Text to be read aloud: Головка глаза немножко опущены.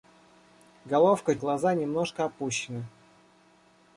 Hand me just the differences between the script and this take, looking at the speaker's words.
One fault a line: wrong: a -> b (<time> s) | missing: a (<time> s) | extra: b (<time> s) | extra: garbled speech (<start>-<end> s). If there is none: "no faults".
no faults